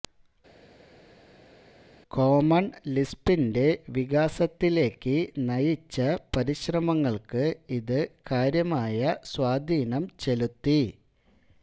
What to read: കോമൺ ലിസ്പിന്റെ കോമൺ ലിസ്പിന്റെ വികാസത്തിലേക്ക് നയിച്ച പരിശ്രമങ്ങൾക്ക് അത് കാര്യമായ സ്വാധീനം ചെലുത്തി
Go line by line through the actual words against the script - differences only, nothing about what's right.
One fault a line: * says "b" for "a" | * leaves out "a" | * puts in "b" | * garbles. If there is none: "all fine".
* leaves out "കോമൺ ലിസ്പിന്റെ"
* says "ഇത്" for "അത്"